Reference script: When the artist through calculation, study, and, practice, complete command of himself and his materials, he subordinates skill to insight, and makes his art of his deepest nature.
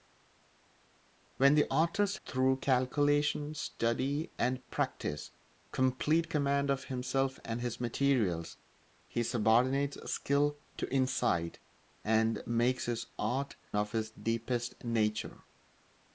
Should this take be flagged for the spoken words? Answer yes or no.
no